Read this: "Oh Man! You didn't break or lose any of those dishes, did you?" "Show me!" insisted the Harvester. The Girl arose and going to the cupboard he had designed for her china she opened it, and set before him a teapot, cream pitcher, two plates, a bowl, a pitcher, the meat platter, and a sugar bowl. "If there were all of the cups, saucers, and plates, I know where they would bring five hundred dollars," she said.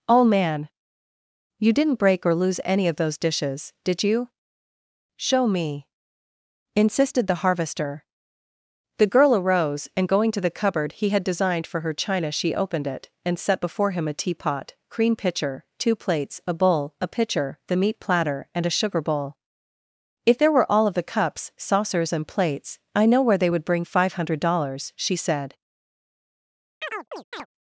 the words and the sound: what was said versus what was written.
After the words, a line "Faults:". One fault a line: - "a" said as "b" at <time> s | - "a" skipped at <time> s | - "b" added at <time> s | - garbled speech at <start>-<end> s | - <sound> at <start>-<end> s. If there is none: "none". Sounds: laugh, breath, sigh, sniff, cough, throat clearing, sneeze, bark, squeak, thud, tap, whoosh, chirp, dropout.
"Oh Man! You didn't break or lose any of those dishes, did you?" "Show me!" insisted the Harvester. The Girl arose and going to the cupboard he had designed for her china she opened it, and set before him a teapot, cream pitcher, two plates, a bowl, a pitcher, the meat platter, and a sugar bowl. "If there were all of the cups, saucers, and plates, I know where they would bring five hundred dollars," she said.
Faults:
- chirp at 26.8-27.5 s